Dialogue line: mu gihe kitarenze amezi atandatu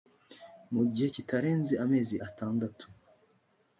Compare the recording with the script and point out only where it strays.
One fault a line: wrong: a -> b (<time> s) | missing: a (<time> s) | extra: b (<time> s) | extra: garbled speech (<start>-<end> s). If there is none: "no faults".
no faults